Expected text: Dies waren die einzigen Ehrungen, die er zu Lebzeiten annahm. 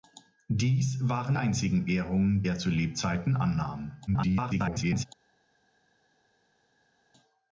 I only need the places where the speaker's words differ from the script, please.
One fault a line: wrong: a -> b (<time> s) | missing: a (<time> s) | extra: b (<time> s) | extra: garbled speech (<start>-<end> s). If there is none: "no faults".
missing: die (1.4 s)
missing: die (2.4 s)
extra: garbled speech (4.1-5.1 s)